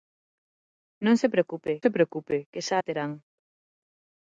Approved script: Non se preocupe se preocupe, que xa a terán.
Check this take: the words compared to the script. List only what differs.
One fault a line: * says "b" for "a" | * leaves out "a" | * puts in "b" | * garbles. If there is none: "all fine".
all fine